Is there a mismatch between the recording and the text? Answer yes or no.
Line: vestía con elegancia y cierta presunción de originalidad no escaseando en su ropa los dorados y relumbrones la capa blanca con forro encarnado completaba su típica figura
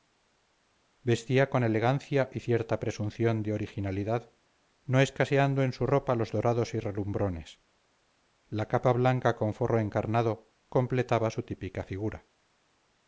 no